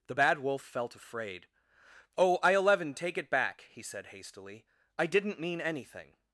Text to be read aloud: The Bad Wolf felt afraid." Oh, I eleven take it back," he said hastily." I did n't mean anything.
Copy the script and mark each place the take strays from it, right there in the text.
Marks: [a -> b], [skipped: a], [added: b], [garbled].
The Bad Wolf felt afraid." Oh, I eleven take it back," he said hastily." I did n't mean anything.